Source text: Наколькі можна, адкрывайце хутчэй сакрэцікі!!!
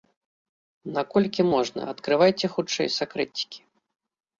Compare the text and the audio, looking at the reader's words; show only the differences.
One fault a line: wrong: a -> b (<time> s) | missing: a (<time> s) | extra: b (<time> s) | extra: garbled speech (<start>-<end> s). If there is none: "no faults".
no faults